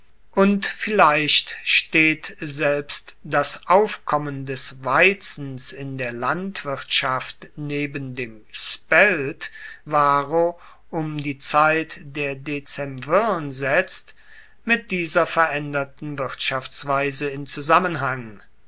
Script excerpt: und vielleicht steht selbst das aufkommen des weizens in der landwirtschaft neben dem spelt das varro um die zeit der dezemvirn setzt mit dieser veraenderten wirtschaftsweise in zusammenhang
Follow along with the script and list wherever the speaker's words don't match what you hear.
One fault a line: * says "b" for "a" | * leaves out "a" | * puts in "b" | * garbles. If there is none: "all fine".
* leaves out "das"